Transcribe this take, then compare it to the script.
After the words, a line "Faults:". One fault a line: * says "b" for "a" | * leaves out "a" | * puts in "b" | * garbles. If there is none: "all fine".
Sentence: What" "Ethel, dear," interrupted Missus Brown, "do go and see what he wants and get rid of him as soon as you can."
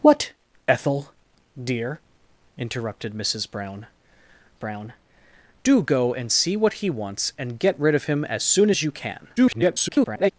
What" "Ethel, dear," interrupted Missus Brown Brown, "do go and see what he wants and get rid of him as soon as you can." [garbled]
Faults:
* puts in "Brown"
* garbles